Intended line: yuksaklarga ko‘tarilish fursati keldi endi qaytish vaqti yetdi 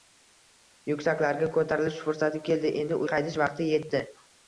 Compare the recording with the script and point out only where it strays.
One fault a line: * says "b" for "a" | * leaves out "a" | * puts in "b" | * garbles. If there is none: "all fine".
all fine